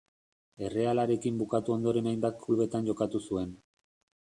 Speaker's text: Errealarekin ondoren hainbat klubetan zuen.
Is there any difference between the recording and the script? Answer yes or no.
yes